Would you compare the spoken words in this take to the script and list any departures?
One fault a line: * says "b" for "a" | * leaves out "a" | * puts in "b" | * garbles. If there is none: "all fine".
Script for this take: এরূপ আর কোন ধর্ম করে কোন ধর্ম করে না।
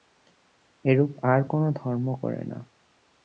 * leaves out "কোন ধর্ম করে"